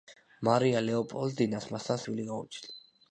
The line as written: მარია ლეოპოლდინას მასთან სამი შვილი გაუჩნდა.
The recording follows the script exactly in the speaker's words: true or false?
false